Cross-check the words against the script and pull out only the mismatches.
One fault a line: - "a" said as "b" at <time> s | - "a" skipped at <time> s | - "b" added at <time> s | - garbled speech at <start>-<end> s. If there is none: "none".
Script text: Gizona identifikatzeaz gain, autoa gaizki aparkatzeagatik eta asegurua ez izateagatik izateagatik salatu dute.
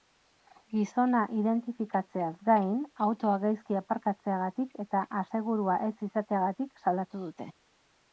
- "izateagatik" skipped at 6.8 s